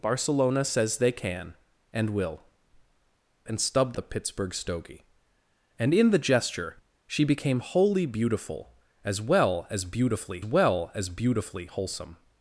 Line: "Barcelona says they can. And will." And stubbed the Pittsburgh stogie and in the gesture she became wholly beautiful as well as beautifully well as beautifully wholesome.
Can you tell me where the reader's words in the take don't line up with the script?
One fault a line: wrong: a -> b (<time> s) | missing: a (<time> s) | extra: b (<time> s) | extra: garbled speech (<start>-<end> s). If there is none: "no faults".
no faults